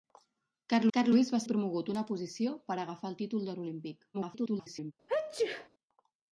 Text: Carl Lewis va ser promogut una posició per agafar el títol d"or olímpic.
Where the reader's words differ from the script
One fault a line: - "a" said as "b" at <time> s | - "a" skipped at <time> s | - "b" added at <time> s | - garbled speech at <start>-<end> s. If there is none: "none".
- "carl" added at 1.0 s
- "ser" skipped at 1.4 s
- garbled speech at 4.1-4.9 s